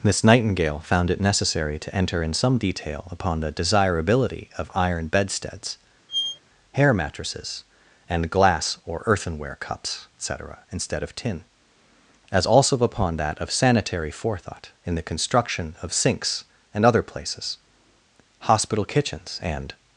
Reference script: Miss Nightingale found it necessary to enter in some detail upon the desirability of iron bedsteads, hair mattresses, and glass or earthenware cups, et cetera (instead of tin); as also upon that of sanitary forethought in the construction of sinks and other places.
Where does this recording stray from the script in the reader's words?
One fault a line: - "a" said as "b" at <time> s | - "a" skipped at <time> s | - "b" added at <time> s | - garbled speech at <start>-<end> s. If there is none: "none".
- "Hospital kitchens and" added at 18.4 s